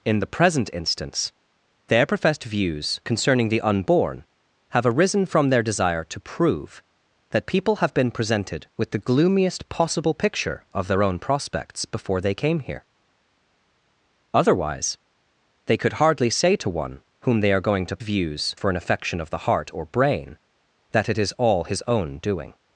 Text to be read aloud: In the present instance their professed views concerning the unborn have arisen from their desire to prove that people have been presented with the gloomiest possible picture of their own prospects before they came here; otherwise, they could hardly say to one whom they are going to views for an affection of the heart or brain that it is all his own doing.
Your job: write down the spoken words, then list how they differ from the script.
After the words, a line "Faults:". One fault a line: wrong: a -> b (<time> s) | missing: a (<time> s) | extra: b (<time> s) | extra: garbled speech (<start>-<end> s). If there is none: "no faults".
In the present instance their professed views concerning the unborn have arisen from their desire to prove that people have been presented with the gloomiest possible picture of their own prospects before they came here; otherwise, they could hardly say to one whom they are going to views for an affection of the heart or brain that it is all his own doing.
Faults:
no faults